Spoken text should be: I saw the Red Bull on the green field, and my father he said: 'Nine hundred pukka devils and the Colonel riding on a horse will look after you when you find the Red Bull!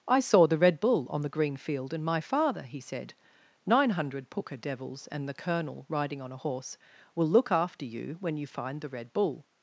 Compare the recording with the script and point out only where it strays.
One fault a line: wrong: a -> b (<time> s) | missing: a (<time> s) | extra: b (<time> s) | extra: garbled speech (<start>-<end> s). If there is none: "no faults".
no faults